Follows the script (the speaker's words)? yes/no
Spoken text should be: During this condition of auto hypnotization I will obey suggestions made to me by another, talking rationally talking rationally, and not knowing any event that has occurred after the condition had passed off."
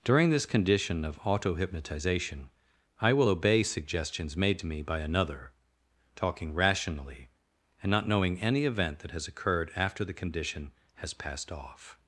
no